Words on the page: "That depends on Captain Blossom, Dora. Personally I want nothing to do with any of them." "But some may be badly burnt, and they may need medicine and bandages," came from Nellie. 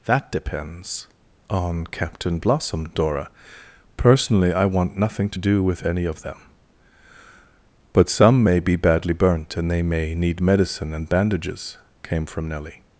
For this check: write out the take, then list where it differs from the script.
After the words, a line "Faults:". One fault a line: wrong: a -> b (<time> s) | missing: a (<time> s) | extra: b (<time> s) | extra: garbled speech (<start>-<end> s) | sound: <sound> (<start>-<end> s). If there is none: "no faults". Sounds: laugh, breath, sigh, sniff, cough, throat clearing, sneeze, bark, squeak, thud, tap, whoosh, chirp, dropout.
"That depends on Captain Blossom, Dora. Personally I want nothing to do with any of them." "But some may be badly burnt, and they may need medicine and bandages," came from Nellie.
Faults:
no faults